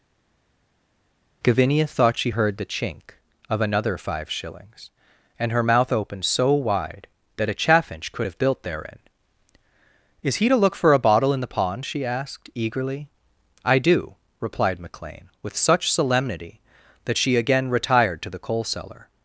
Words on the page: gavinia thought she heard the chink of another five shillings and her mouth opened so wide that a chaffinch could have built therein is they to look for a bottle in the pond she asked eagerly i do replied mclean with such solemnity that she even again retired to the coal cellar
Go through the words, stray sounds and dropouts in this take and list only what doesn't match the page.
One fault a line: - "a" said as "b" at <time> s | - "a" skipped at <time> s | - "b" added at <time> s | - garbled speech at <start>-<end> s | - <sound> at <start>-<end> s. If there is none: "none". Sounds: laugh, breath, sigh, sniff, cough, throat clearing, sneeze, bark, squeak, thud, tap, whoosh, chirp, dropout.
- "they" said as "he" at 10.4 s
- "even" skipped at 17.4 s